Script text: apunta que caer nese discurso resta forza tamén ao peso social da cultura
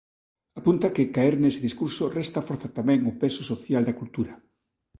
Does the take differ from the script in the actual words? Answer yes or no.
no